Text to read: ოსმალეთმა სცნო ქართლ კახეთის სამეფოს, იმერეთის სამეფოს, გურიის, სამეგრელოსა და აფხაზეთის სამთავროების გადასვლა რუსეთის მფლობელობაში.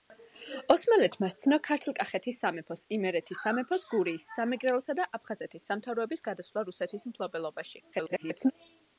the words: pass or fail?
fail